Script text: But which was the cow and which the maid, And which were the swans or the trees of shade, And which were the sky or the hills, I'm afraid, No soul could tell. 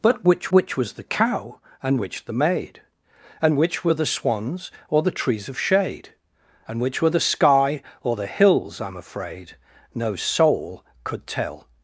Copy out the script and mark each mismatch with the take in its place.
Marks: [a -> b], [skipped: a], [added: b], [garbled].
But which [added: which] was the cow and which the maid, And which were the swans or the trees of shade, And which were the sky or the hills, I'm afraid, No soul could tell.